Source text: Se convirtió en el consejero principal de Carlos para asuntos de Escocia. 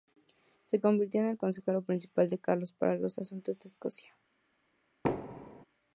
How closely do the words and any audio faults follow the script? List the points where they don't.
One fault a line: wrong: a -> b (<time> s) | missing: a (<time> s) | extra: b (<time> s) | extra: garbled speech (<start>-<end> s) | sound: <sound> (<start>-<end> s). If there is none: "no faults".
extra: los (3.0 s)
sound: thud (5.0-5.7 s)